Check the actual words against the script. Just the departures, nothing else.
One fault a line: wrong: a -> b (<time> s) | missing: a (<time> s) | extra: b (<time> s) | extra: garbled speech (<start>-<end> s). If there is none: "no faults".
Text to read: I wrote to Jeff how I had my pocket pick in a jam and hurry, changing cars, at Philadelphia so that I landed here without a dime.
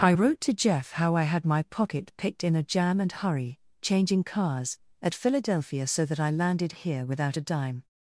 wrong: pick -> picked (2.2 s)